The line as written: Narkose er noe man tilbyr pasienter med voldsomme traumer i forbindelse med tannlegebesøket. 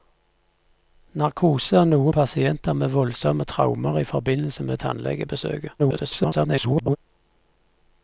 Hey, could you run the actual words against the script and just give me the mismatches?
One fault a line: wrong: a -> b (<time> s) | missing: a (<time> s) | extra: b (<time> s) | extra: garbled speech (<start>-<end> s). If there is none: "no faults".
missing: man tilbyr (2.1 s)
extra: garbled speech (5.8-7.0 s)